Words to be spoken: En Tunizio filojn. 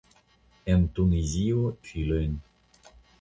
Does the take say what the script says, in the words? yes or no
yes